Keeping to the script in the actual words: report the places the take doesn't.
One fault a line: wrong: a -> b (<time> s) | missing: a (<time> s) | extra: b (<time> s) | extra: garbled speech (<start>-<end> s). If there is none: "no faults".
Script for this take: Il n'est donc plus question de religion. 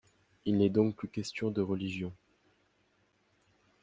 no faults